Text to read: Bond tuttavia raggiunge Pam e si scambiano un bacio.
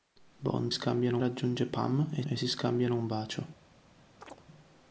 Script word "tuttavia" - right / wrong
wrong